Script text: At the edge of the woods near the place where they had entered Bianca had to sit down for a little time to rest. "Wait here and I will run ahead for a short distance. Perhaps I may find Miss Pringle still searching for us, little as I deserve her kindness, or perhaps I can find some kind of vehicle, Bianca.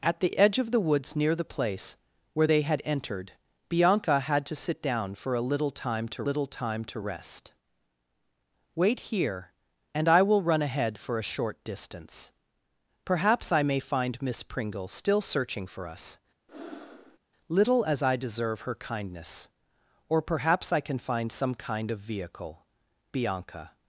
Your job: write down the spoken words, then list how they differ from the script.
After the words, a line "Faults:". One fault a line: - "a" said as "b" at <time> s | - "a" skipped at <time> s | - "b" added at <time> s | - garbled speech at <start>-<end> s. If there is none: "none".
At the edge of the woods near the place where they had entered Bianca had to sit down for a little time to little time to rest. "Wait here and I will run ahead for a short distance. Perhaps I may find Miss Pringle still searching for us, little as I deserve her kindness, or perhaps I can find some kind of vehicle, Bianca.
Faults:
- "little time to" added at 6.2 s